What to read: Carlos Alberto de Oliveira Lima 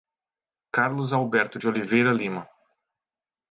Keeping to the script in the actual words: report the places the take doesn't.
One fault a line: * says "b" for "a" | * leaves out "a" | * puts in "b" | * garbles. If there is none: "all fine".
all fine